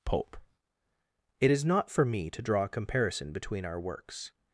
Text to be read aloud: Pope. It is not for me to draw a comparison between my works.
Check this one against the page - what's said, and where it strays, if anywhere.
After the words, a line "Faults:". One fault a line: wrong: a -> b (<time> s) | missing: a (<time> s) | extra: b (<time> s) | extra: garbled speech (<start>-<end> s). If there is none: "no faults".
Pope. It is not for me to draw a comparison between our works.
Faults:
wrong: my -> our (3.6 s)